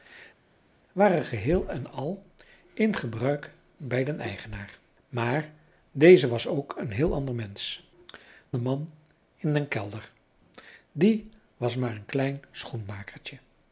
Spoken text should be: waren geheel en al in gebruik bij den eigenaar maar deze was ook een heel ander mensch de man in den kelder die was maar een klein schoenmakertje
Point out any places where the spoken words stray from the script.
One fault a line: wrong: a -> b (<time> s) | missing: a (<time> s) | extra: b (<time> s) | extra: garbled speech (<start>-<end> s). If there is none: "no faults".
no faults